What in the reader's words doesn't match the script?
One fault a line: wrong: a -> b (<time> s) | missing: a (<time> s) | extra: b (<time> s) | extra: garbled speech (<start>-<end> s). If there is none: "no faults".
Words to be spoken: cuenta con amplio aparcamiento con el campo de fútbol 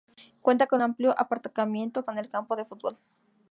no faults